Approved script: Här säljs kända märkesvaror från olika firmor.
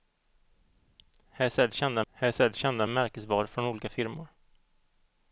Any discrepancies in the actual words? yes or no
yes